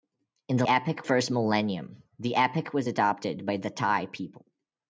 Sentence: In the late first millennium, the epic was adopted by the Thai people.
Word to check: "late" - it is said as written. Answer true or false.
false